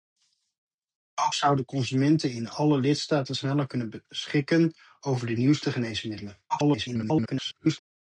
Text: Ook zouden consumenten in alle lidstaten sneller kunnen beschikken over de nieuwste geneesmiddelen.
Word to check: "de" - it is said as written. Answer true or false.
true